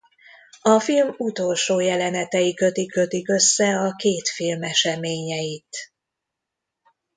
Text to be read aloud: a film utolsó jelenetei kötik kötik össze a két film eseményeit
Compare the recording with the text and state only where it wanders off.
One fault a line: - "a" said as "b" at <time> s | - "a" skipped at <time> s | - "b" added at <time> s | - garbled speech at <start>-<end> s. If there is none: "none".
none